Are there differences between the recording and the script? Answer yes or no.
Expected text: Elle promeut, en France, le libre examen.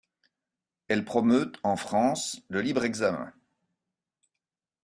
no